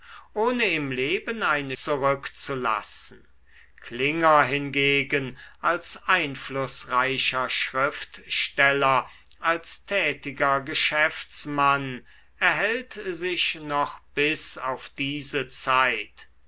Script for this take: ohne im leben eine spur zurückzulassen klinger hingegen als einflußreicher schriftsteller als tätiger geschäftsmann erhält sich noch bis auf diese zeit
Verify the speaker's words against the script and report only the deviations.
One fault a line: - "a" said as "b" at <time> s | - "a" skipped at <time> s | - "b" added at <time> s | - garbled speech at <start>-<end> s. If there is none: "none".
- "spur" skipped at 1.8 s